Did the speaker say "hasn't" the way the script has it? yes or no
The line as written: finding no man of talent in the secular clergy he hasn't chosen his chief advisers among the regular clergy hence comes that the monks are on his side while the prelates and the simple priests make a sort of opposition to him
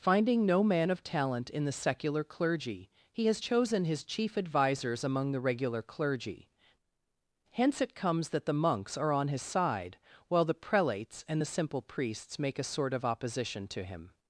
no